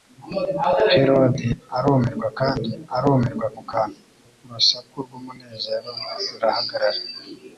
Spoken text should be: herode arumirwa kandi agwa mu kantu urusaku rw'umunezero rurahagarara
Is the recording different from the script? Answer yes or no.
yes